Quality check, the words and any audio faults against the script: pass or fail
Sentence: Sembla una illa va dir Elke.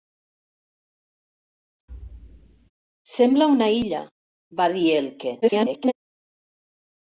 fail